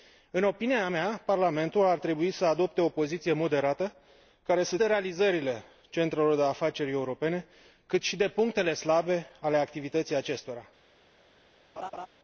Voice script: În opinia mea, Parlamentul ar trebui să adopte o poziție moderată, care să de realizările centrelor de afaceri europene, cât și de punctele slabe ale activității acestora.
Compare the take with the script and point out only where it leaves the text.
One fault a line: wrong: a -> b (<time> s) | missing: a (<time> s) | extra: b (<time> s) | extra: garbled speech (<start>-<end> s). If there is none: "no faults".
no faults